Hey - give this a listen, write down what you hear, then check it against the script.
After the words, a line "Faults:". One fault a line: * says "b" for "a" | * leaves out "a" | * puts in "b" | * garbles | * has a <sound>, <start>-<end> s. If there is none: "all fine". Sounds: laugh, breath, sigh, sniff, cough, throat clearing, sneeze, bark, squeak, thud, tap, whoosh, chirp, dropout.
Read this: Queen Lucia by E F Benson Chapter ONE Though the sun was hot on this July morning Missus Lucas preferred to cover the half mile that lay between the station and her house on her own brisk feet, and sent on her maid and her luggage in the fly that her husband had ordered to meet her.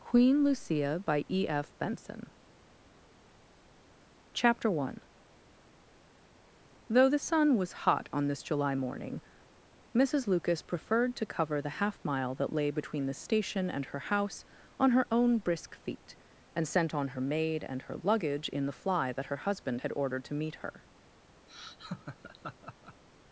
Queen Lucia by E F Benson Chapter ONE Though the sun was hot on this July morning Missus Lucas preferred to cover the half mile that lay between the station and her house on her own brisk feet, and sent on her maid and her luggage in the fly that her husband had ordered to meet her.
Faults:
* has a laugh, 21.5-23.0 s